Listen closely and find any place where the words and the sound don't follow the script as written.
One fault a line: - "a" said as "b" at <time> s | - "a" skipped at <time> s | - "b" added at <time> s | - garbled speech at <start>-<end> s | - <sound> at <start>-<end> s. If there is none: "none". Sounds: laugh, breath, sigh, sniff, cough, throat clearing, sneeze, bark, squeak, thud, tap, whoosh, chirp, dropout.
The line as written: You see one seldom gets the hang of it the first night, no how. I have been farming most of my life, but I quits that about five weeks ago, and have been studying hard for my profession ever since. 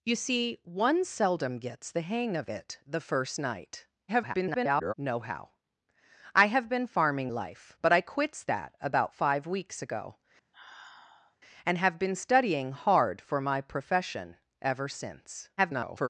- garbled speech at 4.1-4.9 s
- "most of my" skipped at 7.3 s
- sigh at 10.5-11.4 s
- garbled speech at 15.6-16.1 s